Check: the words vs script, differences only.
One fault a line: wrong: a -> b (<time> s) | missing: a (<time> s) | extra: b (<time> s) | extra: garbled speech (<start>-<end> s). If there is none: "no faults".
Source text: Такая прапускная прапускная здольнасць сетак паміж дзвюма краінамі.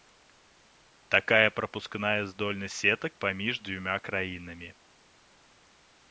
missing: прапускная (2.2 s)